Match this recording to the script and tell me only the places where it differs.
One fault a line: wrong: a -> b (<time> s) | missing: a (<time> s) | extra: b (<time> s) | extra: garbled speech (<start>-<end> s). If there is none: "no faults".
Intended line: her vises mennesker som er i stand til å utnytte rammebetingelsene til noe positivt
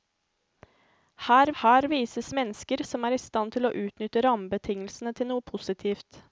extra: her (1.6 s)